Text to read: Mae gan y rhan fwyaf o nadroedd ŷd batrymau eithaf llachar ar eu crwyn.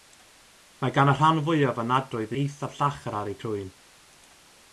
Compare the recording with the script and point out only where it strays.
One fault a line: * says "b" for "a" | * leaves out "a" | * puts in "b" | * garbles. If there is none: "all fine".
* leaves out "ŷd batrymau"